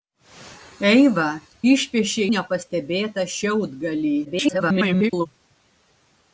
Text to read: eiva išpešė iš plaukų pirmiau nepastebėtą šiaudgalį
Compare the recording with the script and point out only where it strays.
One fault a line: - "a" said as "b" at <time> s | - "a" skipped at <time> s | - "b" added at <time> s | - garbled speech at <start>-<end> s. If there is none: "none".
- "iš plaukų pirmiau" skipped at 2.3 s
- garbled speech at 4.2-5.3 s